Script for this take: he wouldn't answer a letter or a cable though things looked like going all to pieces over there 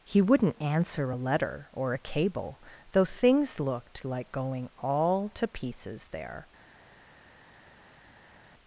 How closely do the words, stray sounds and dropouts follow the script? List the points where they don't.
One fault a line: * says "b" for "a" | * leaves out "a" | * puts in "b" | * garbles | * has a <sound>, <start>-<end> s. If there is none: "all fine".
* leaves out "over"